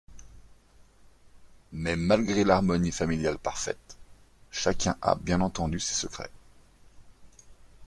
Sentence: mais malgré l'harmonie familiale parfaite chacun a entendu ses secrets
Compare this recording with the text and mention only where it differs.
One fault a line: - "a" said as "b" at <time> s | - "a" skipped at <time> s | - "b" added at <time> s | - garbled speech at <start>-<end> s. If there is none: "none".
- "bien" added at 5.1 s